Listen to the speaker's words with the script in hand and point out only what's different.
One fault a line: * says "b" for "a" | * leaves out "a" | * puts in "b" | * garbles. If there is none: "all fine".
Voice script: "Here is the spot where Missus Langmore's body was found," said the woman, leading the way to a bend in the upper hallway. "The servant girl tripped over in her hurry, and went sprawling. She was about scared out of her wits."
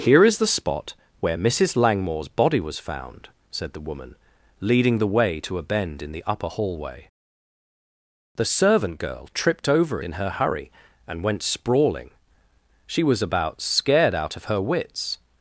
all fine